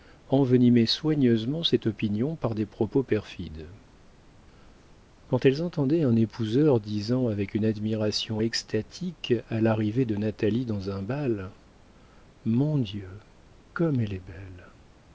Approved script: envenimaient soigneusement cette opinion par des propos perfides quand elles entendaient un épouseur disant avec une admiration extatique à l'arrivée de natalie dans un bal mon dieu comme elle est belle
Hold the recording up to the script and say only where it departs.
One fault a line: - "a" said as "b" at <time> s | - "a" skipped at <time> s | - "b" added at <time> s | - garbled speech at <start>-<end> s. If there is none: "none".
none